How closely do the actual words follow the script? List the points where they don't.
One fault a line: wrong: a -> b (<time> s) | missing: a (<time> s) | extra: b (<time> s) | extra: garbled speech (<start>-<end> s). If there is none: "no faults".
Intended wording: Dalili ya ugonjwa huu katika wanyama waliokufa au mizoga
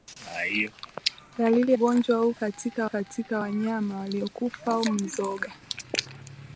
missing: ya (1.7 s)
extra: katika (2.9 s)